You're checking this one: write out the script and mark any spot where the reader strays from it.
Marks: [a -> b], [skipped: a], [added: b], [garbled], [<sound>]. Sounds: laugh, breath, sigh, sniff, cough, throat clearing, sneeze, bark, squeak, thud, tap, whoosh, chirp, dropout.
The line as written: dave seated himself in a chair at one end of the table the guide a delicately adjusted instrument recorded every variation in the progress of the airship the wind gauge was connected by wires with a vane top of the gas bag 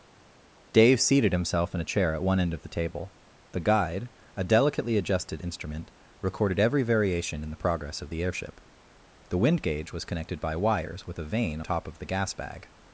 dave seated himself in a chair at one end of the table the guide a delicately adjusted instrument recorded every variation in the progress of the airship the wind gauge was connected by wires with a vane top of the gas bag